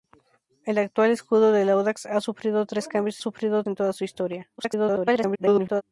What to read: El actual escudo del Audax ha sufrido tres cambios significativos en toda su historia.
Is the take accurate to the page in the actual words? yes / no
no